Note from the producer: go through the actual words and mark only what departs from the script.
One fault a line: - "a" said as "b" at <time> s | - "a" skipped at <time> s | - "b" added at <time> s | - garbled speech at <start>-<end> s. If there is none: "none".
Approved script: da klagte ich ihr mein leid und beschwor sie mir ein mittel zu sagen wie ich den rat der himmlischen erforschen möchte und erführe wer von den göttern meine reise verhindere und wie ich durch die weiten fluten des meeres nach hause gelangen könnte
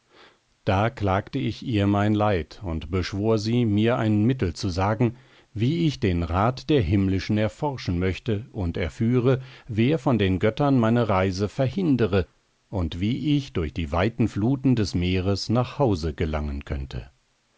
none